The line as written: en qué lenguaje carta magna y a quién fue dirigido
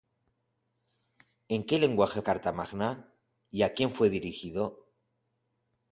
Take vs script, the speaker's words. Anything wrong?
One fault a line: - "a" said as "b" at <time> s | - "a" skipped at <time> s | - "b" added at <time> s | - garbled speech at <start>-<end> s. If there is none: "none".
none